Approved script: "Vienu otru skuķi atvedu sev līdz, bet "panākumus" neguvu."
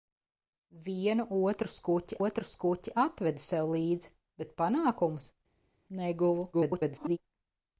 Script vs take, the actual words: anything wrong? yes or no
yes